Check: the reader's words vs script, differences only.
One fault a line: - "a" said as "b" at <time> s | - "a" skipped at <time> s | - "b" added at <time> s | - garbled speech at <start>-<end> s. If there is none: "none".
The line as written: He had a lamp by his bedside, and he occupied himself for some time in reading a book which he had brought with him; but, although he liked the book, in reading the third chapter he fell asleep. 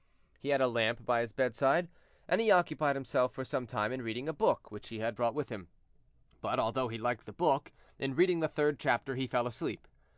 none